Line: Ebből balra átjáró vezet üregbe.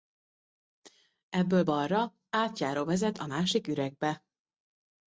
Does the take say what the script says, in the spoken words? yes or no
no